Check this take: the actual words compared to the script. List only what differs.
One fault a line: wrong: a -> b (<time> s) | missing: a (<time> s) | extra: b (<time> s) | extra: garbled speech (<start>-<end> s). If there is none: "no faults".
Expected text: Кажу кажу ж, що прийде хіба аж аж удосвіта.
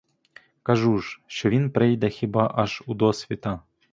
missing: кажу (1.0 s)
extra: він (1.5 s)
missing: аж (2.8 s)